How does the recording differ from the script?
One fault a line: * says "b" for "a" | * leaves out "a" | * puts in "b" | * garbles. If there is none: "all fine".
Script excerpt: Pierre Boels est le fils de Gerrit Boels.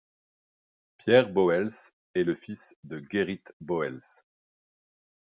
all fine